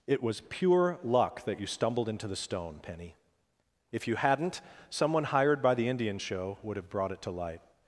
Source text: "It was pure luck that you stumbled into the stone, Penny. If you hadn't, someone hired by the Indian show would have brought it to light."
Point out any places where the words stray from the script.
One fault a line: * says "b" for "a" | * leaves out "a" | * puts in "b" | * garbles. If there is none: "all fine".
all fine